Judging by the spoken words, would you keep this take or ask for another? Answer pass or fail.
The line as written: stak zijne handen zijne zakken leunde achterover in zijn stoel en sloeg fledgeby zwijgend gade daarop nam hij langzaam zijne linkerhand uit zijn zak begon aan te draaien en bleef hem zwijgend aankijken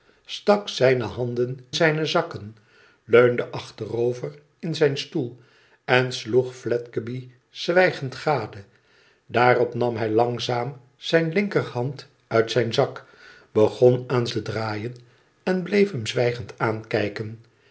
pass